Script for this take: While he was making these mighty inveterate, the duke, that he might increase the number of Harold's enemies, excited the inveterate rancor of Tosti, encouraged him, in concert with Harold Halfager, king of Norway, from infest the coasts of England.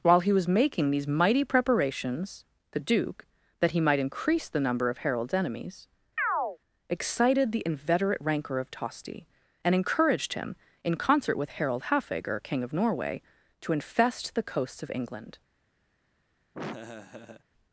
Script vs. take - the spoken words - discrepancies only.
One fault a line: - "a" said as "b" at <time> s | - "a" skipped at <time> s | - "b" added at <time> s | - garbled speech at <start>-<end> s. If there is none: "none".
- "inveterate" said as "preparations" at 1.4 s
- "and" added at 9.6 s
- "from" said as "to" at 13.6 s